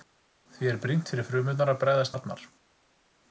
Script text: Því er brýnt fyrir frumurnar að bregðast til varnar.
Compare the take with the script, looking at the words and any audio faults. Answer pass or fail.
fail